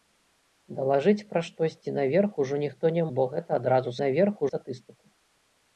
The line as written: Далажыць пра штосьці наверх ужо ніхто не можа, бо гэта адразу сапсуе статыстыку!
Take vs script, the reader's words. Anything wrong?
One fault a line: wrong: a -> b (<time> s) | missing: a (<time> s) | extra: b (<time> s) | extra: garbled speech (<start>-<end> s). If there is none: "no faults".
missing: можа (3.0 s)
wrong: сапсуе -> наверх (4.0 s)